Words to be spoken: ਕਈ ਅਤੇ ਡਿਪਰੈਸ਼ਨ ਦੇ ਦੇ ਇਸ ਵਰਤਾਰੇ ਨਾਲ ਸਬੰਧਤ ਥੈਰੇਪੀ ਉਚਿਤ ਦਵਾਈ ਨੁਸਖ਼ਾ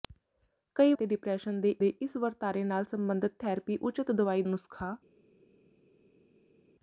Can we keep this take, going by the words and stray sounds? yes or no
yes